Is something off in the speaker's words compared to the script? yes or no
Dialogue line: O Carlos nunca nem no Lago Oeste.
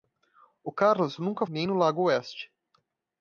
no